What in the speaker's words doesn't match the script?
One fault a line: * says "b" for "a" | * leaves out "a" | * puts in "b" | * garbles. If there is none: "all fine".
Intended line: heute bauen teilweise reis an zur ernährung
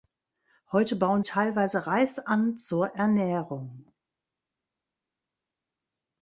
all fine